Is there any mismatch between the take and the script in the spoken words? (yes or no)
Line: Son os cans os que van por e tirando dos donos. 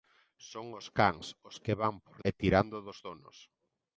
no